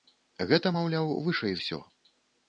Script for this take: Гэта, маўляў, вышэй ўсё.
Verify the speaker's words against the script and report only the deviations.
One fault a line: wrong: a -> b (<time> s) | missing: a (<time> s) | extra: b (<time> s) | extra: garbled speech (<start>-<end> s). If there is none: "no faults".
no faults